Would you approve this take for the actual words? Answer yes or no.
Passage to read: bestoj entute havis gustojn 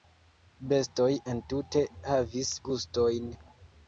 yes